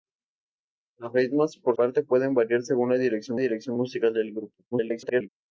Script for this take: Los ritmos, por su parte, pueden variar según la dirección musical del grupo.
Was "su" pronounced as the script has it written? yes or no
no